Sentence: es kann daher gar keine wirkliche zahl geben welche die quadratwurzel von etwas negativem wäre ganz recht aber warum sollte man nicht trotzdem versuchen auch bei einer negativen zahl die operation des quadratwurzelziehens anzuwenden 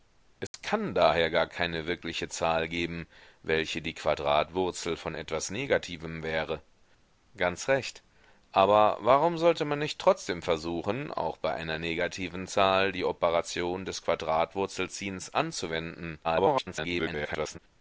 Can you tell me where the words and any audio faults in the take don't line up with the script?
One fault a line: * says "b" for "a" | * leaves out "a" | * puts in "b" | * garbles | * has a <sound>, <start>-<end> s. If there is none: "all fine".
* has a dropout, 0.5-0.5 s
* garbles